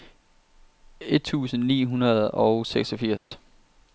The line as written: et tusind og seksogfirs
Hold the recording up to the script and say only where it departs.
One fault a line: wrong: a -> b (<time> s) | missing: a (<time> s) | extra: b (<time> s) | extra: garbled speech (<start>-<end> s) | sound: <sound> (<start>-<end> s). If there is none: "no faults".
extra: ni hundrede (1.6 s)
sound: dropout (3.2-3.3 s)